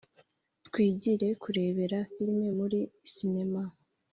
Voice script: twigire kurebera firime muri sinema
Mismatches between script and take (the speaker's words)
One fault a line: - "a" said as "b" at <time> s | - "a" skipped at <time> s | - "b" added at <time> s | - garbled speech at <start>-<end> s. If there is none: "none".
none